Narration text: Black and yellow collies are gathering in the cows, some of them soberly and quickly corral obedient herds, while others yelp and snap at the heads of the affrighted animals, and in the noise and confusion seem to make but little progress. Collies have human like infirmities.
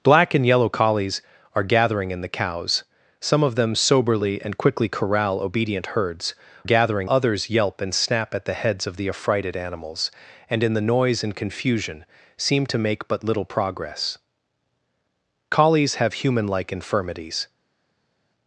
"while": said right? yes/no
no